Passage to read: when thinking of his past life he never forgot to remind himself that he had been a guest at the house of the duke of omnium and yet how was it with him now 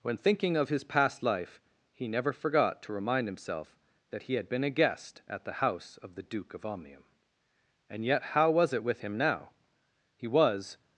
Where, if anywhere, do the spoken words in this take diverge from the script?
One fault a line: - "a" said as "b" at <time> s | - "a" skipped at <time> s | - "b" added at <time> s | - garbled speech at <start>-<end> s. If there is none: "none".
- "he was" added at 10.2 s